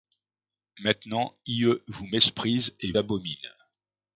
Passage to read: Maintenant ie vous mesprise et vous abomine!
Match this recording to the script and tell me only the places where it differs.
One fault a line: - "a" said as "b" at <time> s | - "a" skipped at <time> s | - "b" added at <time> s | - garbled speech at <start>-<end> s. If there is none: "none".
- "vous" skipped at 2.9 s